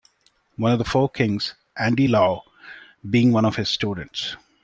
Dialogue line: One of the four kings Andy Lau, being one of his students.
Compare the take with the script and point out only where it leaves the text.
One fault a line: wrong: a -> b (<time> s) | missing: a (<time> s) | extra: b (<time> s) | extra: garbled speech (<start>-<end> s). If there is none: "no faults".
no faults